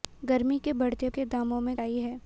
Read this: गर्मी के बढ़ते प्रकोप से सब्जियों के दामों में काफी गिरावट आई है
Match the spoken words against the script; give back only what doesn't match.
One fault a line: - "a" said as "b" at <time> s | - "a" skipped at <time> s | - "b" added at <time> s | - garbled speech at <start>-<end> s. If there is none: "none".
- "प्रकोप से सब्जियों" skipped at 1.1 s
- "काफी गिरावट" skipped at 1.7 s